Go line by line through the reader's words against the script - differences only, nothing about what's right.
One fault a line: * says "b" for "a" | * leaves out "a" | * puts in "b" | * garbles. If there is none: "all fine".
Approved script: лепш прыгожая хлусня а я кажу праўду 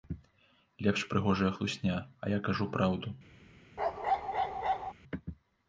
all fine